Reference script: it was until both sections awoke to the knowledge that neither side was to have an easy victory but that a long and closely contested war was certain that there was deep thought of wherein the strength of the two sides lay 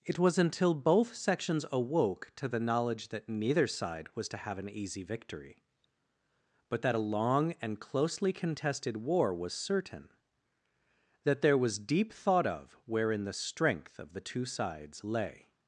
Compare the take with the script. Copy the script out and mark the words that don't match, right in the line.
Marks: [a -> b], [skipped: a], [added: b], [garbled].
it was until both sections awoke to the knowledge that neither side was to have an easy victory but that a long and closely contested war was certain that there was deep thought of wherein the strength of the two sides lay